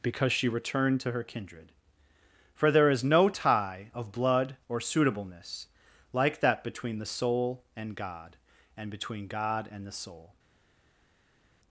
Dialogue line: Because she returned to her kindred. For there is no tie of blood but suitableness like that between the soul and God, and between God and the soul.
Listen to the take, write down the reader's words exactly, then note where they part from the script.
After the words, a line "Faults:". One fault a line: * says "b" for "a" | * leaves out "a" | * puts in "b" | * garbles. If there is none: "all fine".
Because she returned to her kindred. For there is no tie of blood or suitableness like that between the soul and God, and between God and the soul.
Faults:
* says "or" for "but"